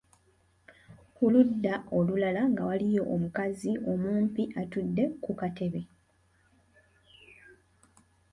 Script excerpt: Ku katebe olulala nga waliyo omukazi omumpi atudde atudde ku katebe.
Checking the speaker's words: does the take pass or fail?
fail